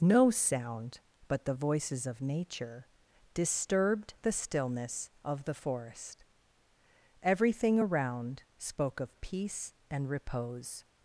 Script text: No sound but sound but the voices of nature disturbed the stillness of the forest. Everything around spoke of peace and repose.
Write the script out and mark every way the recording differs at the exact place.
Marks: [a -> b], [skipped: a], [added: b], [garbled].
No sound but [skipped: sound but] the voices of nature disturbed the stillness of the forest. Everything around spoke of peace and repose.